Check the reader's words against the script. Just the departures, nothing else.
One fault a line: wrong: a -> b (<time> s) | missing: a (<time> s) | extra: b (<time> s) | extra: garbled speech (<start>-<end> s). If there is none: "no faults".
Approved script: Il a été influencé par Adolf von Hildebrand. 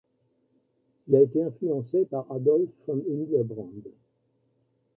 no faults